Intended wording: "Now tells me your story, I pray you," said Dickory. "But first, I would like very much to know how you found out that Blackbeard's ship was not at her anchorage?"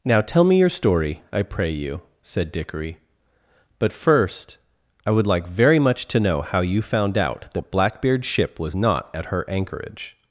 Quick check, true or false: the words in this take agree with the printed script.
false